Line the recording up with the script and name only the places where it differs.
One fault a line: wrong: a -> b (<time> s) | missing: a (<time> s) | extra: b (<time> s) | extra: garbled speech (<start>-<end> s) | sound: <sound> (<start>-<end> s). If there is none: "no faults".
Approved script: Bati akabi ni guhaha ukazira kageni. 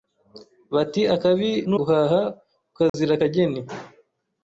sound: dropout (2.9-2.9 s)